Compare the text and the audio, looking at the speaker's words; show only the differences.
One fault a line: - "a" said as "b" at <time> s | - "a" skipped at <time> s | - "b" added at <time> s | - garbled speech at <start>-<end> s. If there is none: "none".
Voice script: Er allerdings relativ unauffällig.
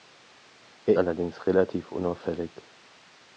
none